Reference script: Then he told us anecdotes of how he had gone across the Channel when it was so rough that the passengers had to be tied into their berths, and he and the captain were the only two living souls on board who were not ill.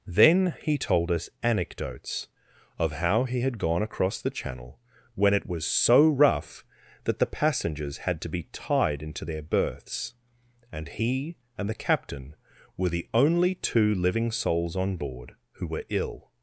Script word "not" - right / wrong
wrong